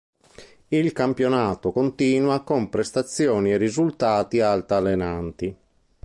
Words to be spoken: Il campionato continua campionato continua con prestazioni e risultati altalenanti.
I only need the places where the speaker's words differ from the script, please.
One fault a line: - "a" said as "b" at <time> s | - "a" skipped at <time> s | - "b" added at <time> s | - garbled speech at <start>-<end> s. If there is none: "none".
- "campionato continua" skipped at 2.4 s